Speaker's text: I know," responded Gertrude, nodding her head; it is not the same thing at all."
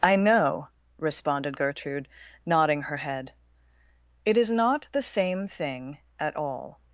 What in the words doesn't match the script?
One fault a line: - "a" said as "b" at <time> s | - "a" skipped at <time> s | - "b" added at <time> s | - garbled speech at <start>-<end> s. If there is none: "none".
none